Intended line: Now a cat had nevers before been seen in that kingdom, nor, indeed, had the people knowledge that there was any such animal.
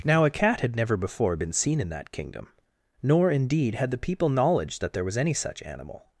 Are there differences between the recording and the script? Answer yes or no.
yes